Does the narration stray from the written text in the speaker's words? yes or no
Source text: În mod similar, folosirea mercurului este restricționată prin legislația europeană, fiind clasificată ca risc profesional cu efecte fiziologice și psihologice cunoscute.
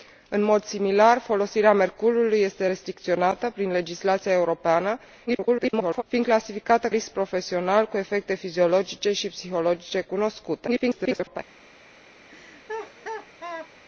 yes